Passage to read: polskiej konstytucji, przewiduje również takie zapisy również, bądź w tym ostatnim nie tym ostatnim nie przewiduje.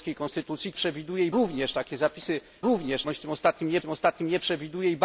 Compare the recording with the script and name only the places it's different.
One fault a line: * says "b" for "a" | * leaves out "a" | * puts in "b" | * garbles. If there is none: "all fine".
all fine